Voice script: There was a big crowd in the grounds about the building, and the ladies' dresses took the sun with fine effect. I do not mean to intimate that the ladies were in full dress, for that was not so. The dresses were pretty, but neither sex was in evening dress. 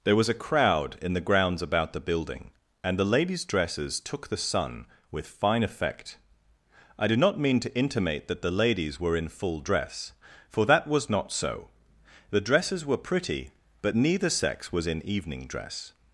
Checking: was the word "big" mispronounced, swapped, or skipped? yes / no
yes